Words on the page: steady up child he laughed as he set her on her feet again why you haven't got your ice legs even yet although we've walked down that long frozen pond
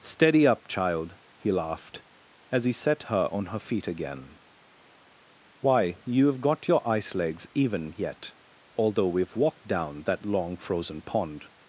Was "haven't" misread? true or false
true